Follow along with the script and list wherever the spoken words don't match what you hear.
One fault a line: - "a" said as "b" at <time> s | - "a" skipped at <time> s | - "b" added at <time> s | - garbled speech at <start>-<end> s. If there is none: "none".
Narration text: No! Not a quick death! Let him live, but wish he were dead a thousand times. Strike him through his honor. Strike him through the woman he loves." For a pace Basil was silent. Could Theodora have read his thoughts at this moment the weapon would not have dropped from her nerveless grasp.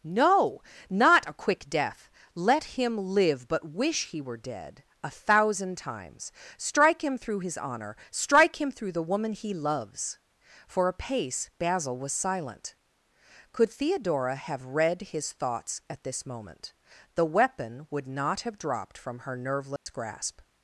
none